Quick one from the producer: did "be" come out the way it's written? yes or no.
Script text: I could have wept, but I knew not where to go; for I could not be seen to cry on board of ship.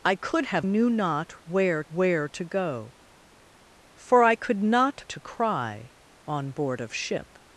no